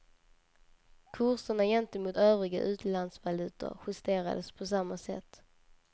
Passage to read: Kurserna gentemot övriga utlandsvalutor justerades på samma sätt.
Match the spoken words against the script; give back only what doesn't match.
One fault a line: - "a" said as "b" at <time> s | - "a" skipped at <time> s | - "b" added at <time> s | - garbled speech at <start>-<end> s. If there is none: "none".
none